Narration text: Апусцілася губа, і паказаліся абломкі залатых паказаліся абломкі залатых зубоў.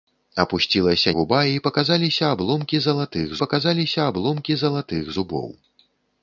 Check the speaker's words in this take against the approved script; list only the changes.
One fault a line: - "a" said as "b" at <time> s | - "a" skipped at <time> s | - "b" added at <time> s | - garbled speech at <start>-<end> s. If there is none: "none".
none